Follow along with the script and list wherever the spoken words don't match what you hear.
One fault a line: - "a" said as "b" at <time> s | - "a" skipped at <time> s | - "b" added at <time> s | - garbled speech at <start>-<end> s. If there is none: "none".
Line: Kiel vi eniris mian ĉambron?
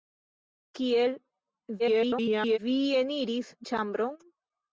- garbled speech at 1.8-2.6 s
- "mian" skipped at 3.5 s